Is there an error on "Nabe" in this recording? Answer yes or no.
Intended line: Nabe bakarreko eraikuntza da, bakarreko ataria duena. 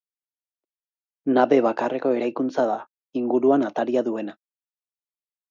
no